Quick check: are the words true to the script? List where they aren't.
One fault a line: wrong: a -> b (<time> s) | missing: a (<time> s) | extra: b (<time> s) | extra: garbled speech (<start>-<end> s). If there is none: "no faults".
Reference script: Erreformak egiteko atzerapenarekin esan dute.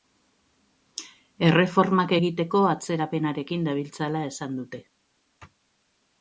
extra: dabiltzala (3.7 s)